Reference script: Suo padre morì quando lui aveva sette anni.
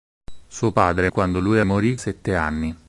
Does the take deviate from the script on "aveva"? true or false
true